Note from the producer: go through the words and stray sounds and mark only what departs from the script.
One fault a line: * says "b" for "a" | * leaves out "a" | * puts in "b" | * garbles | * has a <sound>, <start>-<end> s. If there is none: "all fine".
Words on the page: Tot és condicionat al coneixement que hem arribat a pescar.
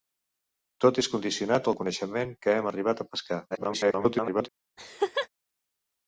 * garbles
* has a laugh, 4.8-5.3 s